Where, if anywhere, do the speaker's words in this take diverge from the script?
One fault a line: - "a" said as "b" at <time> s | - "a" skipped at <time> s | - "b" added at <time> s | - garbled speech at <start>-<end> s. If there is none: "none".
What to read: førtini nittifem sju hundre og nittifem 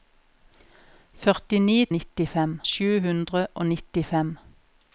none